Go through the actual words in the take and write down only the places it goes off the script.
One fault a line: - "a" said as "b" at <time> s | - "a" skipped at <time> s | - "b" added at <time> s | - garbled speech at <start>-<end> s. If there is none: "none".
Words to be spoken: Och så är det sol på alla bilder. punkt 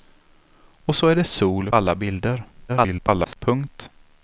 - "på" skipped at 1.7 s
- garbled speech at 2.7-3.4 s